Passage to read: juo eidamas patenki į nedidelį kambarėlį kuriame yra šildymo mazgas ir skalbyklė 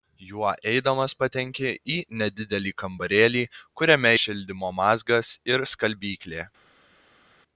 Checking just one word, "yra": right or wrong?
wrong